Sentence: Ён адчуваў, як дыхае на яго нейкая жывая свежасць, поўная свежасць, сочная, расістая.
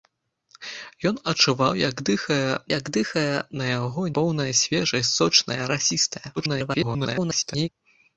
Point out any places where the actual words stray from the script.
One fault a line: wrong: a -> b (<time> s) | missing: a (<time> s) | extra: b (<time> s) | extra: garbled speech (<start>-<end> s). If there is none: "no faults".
extra: як дыхае (2.8 s)
missing: нейкая жывая свежасць (4.0 s)
extra: garbled speech (6.4-7.7 s)